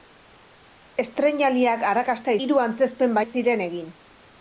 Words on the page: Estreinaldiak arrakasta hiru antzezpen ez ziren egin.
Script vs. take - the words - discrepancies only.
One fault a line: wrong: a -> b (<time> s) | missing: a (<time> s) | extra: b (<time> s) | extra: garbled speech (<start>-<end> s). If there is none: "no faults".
no faults